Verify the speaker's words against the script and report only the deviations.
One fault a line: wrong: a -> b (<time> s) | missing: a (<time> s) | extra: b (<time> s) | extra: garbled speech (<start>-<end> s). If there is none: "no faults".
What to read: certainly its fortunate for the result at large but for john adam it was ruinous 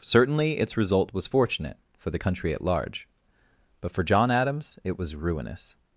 extra: result was (0.8 s)
wrong: result -> country (2.2 s)
wrong: adam -> adams (4.3 s)